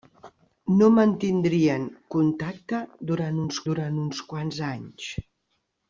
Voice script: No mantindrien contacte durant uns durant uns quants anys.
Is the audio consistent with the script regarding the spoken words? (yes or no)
yes